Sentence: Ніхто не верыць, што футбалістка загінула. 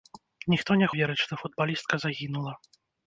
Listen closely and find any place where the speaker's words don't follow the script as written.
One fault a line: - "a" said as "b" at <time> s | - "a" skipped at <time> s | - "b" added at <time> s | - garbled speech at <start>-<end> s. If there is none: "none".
none